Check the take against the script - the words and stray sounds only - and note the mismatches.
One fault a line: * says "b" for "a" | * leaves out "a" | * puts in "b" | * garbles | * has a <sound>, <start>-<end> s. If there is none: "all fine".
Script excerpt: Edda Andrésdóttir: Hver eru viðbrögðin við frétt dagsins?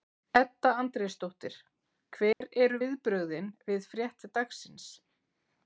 * has a dropout, 2.3-2.4 s